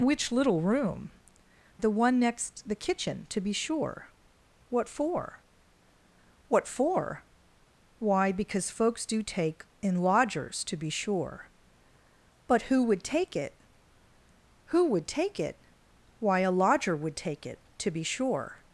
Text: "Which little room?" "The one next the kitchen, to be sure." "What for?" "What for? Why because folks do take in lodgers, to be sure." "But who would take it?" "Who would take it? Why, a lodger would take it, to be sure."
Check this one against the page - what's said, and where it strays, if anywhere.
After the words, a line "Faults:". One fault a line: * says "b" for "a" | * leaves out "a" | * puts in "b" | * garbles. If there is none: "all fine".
"Which little room?" "The one next the kitchen, to be sure." "What for?" "What for? Why because folks do take in lodgers, to be sure." "But who would take it?" "Who would take it? Why, a lodger would take it, to be sure."
Faults:
all fine